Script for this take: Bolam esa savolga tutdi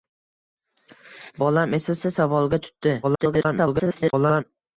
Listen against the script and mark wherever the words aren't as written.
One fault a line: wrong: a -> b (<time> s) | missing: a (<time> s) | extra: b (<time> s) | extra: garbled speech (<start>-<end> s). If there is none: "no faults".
extra: esa (2.0 s)
extra: garbled speech (3.0-4.4 s)